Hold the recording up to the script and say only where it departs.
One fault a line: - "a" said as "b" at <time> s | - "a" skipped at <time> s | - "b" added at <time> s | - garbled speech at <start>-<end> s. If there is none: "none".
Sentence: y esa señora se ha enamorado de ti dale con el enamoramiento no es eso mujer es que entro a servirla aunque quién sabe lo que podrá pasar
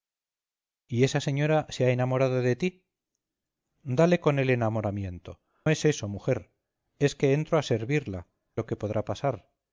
- "no" skipped at 5.4 s
- "aunque quién sabe" skipped at 8.3 s